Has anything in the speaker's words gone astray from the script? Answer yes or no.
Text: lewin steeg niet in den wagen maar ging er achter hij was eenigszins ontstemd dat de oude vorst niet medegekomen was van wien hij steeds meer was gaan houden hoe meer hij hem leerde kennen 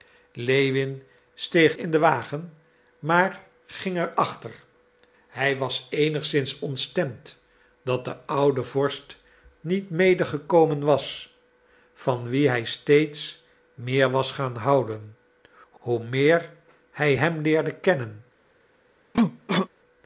yes